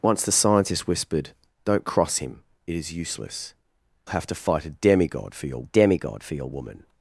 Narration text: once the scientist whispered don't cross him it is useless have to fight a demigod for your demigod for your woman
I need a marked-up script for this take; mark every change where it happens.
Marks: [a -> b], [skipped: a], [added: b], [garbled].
once the scientist whispered don't cross him it is useless have to fight a demigod for your demigod for your woman